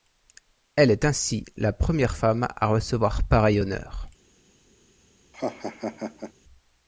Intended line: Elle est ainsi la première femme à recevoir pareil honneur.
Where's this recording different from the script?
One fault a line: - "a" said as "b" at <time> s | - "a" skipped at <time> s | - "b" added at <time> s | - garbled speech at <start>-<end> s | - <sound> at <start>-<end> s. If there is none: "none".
- laugh at 5.3-6.3 s